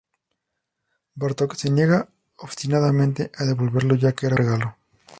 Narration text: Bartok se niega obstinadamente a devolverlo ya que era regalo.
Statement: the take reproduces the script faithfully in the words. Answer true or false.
true